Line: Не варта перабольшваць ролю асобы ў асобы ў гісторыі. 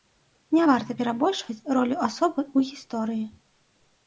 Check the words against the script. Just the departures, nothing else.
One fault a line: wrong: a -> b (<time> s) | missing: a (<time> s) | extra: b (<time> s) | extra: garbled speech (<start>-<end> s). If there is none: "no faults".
missing: асобы ў (2.7 s)